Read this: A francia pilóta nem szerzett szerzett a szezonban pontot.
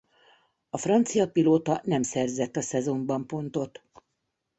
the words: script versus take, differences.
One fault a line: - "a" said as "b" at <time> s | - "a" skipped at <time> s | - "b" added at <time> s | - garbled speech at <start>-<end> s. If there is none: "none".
- "szerzett" skipped at 2.6 s